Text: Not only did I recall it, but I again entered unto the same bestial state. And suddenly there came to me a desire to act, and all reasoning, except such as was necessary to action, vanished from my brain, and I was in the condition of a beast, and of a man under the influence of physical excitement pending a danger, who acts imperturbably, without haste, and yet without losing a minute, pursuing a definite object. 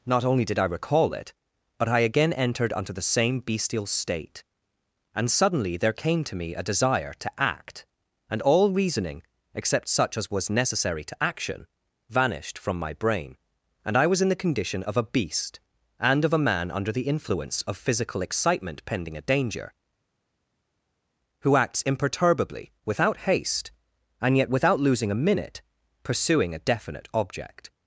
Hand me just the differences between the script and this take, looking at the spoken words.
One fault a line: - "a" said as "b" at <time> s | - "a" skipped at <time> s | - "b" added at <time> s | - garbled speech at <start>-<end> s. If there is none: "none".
none